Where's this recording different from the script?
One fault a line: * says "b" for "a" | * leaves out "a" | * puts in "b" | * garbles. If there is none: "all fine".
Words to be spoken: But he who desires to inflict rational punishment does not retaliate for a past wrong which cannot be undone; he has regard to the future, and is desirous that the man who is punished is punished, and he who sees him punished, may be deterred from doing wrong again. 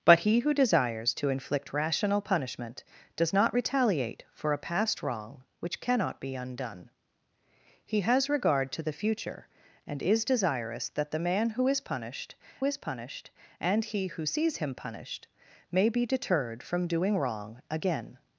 all fine